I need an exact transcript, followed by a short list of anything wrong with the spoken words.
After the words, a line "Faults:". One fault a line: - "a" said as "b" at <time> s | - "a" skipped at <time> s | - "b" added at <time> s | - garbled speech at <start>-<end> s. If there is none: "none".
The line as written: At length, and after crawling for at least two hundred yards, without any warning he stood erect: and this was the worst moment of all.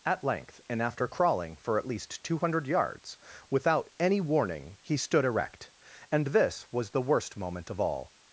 At length, and after crawling for at least two hundred yards, without any warning he stood erect: and this was the worst moment of all.
Faults:
none